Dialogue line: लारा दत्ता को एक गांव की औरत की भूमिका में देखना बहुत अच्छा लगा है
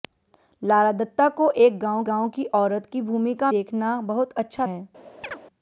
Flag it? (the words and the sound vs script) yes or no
yes